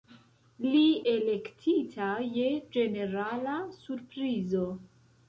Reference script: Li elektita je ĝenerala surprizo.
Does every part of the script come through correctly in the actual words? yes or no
yes